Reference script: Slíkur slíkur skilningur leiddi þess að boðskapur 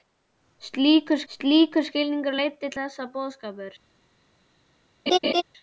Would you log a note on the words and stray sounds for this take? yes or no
yes